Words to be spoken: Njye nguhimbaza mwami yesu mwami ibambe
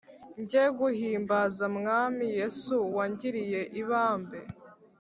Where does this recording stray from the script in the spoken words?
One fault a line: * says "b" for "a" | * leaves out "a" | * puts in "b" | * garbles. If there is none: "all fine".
* says "wangiriye" for "mwami"